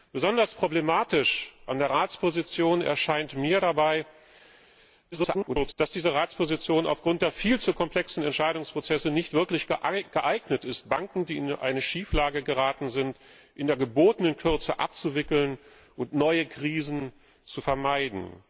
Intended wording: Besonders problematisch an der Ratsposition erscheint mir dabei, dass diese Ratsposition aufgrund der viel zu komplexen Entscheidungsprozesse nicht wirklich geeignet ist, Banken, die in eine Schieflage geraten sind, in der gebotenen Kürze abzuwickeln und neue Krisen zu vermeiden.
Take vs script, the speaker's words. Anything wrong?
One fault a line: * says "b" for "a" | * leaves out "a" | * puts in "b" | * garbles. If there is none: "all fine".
* garbles